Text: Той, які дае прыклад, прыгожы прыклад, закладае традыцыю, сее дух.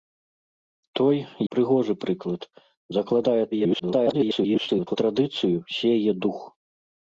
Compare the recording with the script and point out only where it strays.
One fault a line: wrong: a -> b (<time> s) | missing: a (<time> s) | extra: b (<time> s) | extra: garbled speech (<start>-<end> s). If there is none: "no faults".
missing: які дае прыклад (1.2 s)
extra: garbled speech (3.5-5.0 s)